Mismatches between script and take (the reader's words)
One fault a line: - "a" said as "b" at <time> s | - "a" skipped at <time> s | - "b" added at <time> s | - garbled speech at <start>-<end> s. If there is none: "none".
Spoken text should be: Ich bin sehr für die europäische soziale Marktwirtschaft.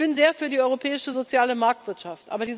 none